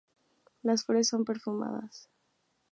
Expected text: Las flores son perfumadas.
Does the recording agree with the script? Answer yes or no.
yes